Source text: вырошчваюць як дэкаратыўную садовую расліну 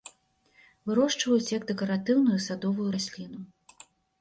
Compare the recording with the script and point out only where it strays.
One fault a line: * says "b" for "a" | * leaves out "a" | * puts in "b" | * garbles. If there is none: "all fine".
all fine